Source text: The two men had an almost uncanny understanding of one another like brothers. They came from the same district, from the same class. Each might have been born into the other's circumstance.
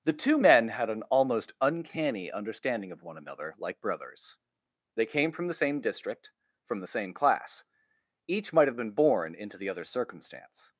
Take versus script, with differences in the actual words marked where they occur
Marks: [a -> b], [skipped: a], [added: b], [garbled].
The two men had an almost uncanny understanding of one another like brothers. They came from the same district, from the same class. Each might have been born into the other's circumstance.